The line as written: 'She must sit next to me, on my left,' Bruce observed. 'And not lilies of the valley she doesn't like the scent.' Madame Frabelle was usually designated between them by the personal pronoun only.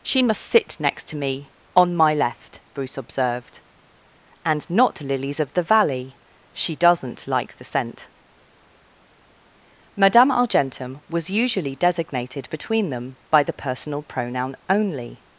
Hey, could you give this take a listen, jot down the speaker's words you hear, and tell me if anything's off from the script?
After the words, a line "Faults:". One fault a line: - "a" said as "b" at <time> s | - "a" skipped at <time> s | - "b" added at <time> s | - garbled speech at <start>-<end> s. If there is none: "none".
'She must sit next to me, on my left,' Bruce observed. 'And not lilies of the valley she doesn't like the scent.' Madame Argentum was usually designated between them by the personal pronoun only.
Faults:
- "Frabelle" said as "Argentum" at 10.3 s